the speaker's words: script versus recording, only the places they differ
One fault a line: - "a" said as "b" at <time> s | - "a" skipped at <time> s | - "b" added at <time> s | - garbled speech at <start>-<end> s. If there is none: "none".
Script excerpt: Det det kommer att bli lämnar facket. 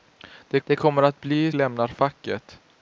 none